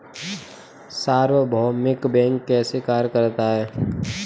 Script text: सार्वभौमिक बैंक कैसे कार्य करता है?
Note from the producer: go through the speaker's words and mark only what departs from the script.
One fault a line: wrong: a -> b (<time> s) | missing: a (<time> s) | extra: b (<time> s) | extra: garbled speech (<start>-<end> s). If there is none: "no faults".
no faults